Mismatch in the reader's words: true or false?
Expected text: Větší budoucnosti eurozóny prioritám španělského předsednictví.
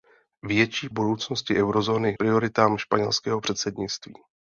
false